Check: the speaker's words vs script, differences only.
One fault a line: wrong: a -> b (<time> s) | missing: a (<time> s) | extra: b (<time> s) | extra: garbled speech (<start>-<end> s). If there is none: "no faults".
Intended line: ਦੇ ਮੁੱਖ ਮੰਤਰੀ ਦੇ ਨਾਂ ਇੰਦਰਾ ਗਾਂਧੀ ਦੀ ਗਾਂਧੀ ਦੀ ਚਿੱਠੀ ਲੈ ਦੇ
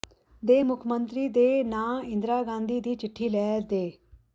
missing: ਗਾਂਧੀ ਦੀ (3.0 s)